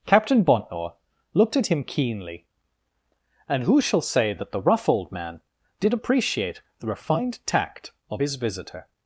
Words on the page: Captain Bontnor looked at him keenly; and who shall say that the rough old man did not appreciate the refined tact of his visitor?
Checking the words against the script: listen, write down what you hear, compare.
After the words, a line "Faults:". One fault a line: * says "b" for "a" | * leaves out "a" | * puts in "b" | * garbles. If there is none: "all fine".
Captain Bontnor looked at him keenly; and who shall say that the rough old man did appreciate the refined tact of his visitor?
Faults:
* leaves out "not"